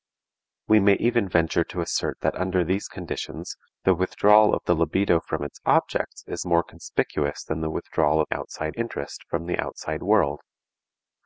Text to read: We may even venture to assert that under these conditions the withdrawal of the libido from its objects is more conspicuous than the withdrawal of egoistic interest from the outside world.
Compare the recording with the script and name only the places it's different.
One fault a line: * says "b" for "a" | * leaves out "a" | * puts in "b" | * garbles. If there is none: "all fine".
* says "outside" for "egoistic"